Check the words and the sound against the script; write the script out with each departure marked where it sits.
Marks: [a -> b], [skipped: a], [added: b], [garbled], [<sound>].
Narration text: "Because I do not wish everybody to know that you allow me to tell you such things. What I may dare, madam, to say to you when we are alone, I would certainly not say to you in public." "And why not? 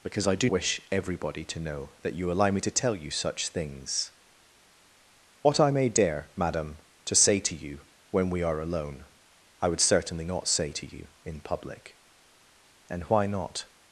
"Because I do [skipped: not] wish everybody to know that you allow me to tell you such things. What I may dare, madam, to say to you when we are alone, I would certainly not say to you in public." "And why not?